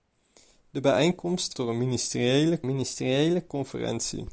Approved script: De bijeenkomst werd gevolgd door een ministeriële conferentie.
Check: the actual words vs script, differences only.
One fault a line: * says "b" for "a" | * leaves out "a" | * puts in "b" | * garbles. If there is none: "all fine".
* leaves out "werd gevolgd"
* puts in "ministeriële"